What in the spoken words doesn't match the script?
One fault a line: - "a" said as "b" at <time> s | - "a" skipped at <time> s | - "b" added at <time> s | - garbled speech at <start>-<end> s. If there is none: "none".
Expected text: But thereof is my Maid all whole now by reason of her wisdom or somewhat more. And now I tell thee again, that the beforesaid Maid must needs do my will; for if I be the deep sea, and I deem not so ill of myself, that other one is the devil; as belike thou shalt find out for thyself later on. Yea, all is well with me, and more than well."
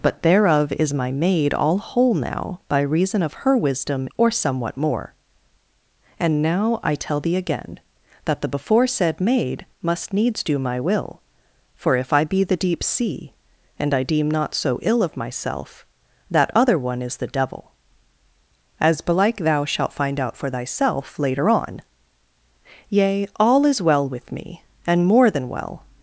none